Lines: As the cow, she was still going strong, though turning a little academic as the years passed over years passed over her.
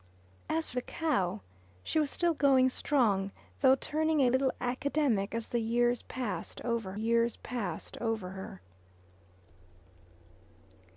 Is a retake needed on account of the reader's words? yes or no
no